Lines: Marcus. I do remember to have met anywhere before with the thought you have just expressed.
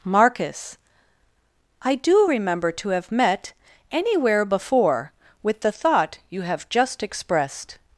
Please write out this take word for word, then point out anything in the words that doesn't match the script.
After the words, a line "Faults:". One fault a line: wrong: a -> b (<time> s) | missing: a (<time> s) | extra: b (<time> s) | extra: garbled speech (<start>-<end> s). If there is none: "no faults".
Marcus. I do remember to have met anywhere before with the thought you have just expressed.
Faults:
no faults